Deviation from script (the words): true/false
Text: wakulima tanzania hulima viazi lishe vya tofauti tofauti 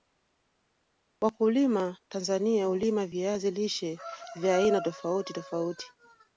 true